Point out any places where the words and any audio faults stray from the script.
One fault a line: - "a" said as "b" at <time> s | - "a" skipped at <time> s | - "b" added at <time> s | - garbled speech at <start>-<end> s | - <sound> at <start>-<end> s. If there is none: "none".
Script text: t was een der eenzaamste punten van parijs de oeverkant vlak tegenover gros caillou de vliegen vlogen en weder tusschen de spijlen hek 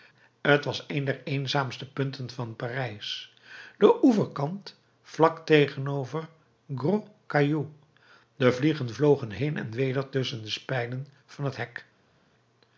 - "heen" added at 9.3 s
- "van het" added at 11.2 s